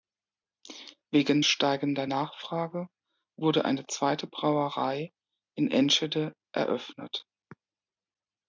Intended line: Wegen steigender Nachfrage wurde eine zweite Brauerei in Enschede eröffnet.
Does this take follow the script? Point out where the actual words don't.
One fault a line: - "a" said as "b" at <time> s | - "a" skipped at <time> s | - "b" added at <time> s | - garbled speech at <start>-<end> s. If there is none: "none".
none